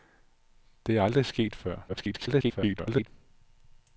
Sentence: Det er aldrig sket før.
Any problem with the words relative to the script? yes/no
yes